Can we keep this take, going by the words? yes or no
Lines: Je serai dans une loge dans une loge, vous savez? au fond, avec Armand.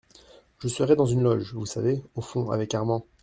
no